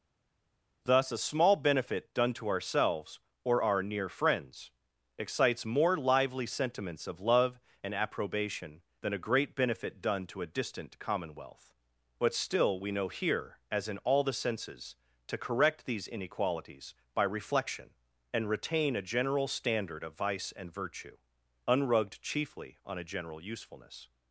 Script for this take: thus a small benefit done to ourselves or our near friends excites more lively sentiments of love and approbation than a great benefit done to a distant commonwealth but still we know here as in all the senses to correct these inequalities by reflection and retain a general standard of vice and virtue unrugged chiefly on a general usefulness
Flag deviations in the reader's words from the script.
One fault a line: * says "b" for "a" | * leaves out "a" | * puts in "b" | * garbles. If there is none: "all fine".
all fine